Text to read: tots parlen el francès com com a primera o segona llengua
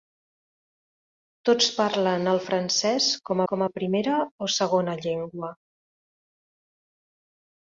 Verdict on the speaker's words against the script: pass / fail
pass